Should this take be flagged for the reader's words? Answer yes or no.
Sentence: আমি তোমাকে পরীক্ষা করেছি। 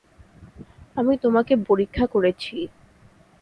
no